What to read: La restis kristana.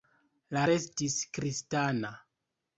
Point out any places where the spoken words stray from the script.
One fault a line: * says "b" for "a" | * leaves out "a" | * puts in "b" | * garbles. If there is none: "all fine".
all fine